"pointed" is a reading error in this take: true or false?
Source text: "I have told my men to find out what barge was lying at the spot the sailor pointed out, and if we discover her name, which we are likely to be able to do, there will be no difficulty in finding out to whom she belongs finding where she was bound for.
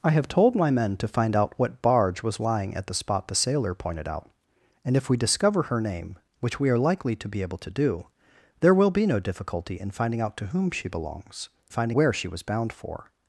false